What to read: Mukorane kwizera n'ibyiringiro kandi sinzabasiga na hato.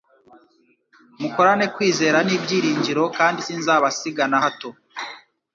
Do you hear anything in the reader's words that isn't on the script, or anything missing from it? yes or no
no